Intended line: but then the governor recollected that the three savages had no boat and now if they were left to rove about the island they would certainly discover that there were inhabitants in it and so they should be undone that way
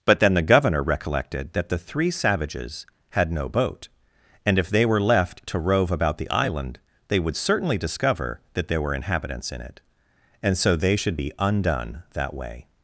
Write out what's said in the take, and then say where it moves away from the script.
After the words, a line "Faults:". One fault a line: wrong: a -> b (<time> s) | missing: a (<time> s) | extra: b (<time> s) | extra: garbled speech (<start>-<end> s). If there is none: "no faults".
but then the governor recollected that the three savages had no boat and if they were left to rove about the island they would certainly discover that there were inhabitants in it and so they should be undone that way
Faults:
missing: now (4.6 s)